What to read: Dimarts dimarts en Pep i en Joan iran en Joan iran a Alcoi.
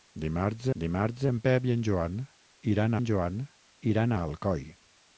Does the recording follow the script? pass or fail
pass